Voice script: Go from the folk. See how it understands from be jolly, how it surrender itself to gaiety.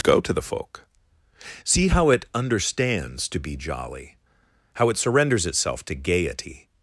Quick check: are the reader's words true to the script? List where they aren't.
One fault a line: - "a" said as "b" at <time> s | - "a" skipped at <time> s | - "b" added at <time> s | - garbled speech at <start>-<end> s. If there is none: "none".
- "from" said as "to" at 0.2 s
- "from" said as "to" at 3.3 s
- "surrender" said as "surrenders" at 5.0 s